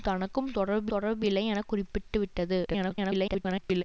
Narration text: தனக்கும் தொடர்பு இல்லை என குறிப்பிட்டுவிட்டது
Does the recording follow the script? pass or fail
fail